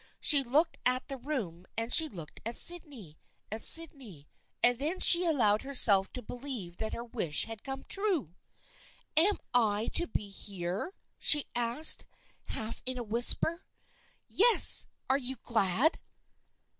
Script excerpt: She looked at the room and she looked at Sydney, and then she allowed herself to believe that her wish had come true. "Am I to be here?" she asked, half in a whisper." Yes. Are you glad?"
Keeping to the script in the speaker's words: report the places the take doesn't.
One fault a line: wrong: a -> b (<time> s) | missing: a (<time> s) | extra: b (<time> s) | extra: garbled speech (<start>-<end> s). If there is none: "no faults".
extra: at Sydney (3.5 s)